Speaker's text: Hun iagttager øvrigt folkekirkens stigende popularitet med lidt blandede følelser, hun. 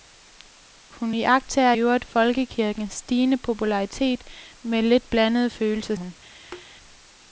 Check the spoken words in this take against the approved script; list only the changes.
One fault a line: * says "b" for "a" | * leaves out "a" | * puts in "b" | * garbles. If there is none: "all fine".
all fine